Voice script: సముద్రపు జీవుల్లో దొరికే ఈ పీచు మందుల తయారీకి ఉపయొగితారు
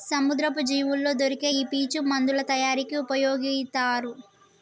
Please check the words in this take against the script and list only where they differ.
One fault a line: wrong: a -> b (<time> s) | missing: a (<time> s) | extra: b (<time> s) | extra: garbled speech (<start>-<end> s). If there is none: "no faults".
no faults